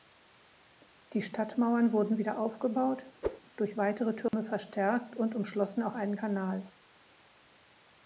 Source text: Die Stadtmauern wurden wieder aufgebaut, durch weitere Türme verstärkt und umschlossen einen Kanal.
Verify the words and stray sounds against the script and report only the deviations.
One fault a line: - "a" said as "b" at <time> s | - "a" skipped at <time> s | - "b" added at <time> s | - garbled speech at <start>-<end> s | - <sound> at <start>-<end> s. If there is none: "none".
- whoosh at 3.2-3.4 s
- dropout at 4.3-4.3 s
- "auch" added at 5.8 s